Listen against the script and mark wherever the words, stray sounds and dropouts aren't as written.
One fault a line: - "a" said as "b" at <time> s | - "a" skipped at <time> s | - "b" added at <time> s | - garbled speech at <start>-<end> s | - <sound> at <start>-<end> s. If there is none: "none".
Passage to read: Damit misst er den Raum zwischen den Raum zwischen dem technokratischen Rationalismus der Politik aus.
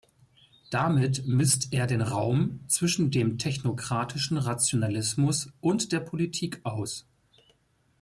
- "den Raum zwischen" skipped at 3.1 s
- "und" added at 5.6 s